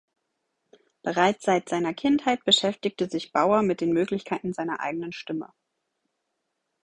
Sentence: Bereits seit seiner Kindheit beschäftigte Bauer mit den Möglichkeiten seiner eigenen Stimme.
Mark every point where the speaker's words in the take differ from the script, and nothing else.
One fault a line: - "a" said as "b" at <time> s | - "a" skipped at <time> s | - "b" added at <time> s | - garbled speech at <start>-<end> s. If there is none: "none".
- "sich" added at 3.1 s